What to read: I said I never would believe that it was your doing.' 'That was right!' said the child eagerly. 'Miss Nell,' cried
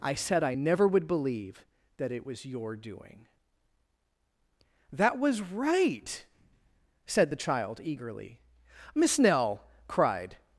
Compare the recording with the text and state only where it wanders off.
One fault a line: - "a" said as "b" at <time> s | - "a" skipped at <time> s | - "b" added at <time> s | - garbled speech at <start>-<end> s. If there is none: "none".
none